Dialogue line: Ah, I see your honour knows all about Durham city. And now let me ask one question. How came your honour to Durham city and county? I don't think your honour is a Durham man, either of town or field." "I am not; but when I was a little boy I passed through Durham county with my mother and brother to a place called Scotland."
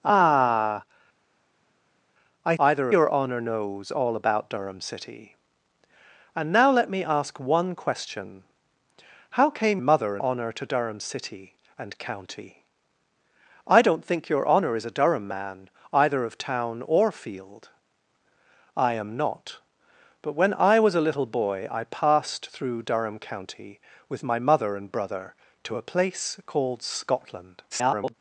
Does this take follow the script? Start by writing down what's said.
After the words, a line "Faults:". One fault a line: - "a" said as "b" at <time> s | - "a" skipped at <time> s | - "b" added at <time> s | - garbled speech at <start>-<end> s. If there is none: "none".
Ah, I either your honour knows all about Durham city. And now let me ask one question. How came mother honour to Durham city and county? I don't think your honour is a Durham man, either of town or field." "I am not; but when I was a little boy I passed through Durham county with my mother and brother to a place called Scotland." [garbled]
Faults:
- "see" said as "either" at 2.6 s
- "your" said as "mother" at 9.8 s
- garbled speech at 27.7-28.1 s